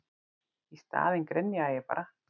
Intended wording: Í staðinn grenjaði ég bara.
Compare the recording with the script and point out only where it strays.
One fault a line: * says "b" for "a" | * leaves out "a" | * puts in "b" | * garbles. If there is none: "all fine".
all fine